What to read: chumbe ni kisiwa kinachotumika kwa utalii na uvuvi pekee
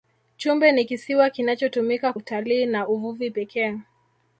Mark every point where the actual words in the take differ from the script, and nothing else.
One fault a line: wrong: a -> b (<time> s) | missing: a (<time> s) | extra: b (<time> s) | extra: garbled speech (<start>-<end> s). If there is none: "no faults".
missing: kwa (2.1 s)